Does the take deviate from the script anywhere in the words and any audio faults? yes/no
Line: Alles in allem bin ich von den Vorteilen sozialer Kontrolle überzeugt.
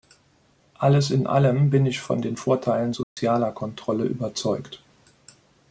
yes